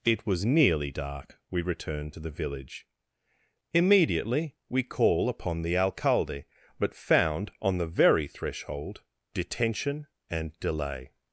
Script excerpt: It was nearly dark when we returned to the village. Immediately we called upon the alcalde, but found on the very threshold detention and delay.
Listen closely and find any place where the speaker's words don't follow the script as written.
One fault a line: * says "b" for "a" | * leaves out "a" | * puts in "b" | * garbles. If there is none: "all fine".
* leaves out "when"
* says "call" for "called"